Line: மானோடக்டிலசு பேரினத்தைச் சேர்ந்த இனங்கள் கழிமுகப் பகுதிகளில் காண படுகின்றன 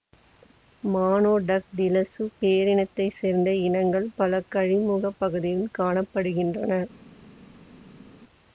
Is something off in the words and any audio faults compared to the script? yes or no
yes